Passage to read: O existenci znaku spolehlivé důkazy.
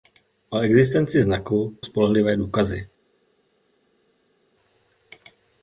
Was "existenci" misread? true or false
false